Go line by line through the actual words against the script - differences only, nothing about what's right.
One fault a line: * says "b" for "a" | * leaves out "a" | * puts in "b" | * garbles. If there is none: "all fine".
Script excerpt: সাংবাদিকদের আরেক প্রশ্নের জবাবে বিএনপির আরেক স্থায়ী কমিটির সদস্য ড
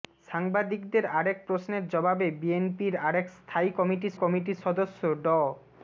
* puts in "কমিটির"